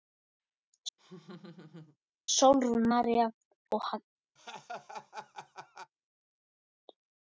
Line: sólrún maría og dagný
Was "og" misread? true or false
false